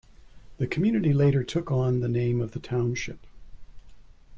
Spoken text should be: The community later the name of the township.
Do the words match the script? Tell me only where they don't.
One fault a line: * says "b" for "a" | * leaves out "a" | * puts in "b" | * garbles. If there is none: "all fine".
* puts in "took on"